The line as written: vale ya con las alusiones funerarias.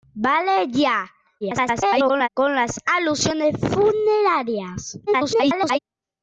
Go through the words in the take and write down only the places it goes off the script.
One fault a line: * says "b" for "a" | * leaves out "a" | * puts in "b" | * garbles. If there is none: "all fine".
* garbles
* garbles